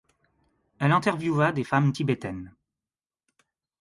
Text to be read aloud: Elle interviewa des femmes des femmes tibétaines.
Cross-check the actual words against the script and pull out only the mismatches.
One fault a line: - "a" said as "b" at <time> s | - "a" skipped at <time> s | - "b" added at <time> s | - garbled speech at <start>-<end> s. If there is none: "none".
- "des femmes" skipped at 1.9 s